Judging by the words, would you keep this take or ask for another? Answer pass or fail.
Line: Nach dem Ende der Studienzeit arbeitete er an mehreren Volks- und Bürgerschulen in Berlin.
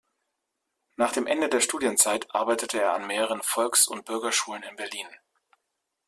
pass